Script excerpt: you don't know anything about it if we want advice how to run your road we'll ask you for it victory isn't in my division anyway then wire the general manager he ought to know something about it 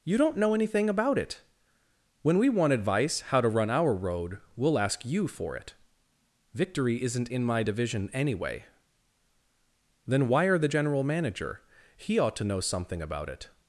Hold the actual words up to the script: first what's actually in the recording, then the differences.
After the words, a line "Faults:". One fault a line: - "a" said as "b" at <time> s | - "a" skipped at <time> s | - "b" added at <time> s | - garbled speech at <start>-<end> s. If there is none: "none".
you don't know anything about it when we want advice how to run our road we'll ask you for it victory isn't in my division anyway then wire the general manager he ought to know something about it
Faults:
- "if" said as "when" at 2.2 s
- "your" said as "our" at 3.7 s